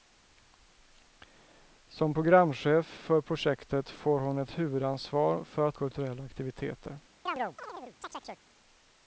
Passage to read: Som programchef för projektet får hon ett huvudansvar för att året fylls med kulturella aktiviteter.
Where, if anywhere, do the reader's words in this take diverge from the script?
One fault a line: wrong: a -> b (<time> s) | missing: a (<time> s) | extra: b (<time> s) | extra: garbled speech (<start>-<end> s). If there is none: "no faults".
missing: året fylls med (5.8 s)